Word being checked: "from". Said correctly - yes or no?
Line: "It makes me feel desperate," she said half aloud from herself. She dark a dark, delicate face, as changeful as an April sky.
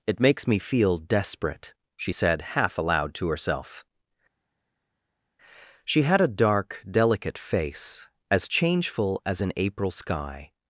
no